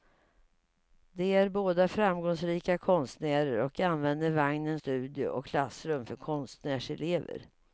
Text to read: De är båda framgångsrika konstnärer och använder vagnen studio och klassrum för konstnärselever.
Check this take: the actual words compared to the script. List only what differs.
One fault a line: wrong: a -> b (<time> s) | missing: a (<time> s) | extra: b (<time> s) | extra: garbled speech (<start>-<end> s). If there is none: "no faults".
no faults